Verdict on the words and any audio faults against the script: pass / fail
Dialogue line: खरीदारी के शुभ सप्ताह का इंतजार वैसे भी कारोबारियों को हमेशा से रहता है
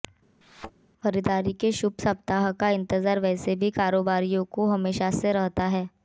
fail